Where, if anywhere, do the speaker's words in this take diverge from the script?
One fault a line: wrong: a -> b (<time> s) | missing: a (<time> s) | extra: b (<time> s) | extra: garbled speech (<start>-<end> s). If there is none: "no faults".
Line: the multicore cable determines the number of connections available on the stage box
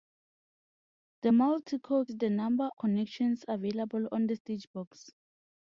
missing: cable determines (2.1 s)
missing: of (2.7 s)